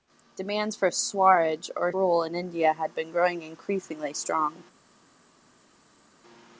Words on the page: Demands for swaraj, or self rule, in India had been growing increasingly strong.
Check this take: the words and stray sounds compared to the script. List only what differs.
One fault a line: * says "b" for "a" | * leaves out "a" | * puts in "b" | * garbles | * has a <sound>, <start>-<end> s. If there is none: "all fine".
* leaves out "self"